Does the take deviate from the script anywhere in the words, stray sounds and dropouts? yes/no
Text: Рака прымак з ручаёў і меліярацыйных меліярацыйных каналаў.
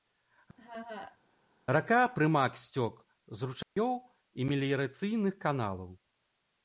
yes